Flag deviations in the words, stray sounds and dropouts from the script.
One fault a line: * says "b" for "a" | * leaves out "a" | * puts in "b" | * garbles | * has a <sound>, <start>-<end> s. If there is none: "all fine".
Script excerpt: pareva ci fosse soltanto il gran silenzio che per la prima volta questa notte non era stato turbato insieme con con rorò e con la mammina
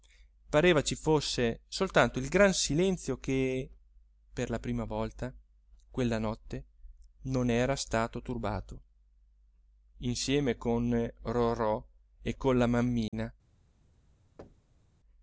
* says "quella" for "questa"
* leaves out "con"
* has a dropout, 13.1-13.1 s
* has a thud, 14.4-14.9 s